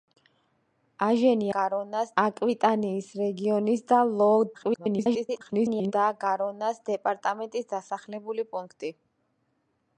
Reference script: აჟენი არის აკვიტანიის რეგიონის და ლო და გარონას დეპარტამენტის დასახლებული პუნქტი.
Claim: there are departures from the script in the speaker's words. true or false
true